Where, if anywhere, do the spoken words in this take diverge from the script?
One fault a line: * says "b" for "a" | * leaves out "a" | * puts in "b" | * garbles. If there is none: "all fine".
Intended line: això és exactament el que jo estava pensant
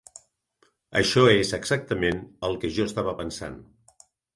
all fine